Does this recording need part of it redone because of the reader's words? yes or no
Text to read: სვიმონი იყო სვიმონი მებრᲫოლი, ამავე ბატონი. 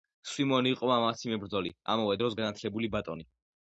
yes